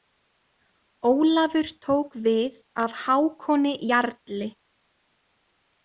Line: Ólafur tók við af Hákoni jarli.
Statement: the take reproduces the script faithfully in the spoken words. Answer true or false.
true